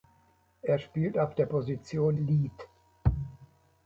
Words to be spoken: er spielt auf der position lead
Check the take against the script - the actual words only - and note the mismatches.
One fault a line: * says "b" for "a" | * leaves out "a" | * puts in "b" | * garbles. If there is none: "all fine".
all fine